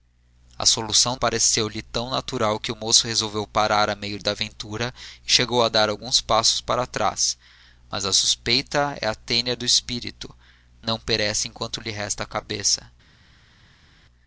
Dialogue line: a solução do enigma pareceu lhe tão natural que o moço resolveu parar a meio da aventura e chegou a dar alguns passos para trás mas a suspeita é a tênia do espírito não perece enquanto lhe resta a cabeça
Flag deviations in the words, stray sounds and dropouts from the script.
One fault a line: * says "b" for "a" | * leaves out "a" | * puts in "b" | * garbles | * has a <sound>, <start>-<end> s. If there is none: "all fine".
* leaves out "do enigma"